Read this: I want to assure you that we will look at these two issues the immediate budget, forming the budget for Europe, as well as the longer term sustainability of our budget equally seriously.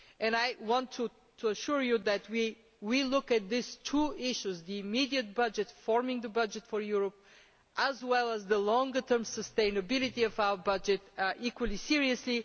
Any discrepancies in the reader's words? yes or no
no